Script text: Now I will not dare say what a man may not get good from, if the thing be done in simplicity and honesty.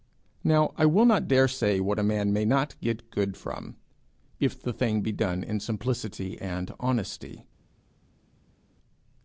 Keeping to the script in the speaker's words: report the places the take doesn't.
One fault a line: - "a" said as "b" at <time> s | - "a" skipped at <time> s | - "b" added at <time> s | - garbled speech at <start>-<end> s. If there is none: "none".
none